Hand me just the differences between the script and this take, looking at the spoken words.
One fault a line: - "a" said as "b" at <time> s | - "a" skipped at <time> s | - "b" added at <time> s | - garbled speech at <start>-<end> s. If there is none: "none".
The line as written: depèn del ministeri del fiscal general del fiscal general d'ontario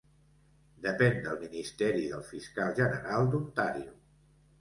- "del fiscal general" skipped at 3.3 s